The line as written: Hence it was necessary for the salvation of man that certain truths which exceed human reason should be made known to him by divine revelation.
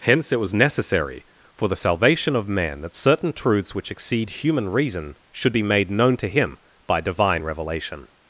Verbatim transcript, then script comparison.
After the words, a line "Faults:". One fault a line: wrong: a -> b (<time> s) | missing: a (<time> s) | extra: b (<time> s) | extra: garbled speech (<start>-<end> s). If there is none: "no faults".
Hence it was necessary for the salvation of man that certain truths which exceed human reason should be made known to him by divine revelation.
Faults:
no faults